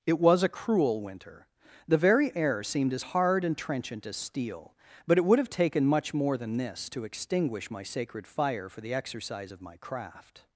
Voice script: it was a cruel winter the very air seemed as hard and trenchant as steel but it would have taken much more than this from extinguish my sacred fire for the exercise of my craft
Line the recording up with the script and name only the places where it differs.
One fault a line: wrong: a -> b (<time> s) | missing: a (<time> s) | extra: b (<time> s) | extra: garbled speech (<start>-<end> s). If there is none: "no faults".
wrong: from -> to (6.9 s)